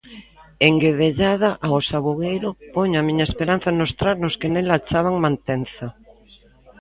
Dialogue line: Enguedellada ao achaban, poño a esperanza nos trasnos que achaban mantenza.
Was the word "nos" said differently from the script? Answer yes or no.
no